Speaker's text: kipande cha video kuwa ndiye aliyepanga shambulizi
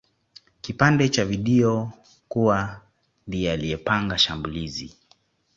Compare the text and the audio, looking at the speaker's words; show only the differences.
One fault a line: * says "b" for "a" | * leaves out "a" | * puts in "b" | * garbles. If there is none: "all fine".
all fine